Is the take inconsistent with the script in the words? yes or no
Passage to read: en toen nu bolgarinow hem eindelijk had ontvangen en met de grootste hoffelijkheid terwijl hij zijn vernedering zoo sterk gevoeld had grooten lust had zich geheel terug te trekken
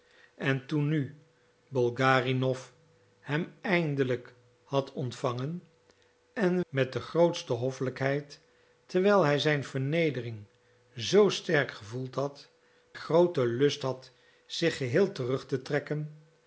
no